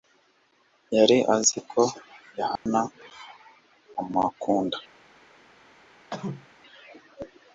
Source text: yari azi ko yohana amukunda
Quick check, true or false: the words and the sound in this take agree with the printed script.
false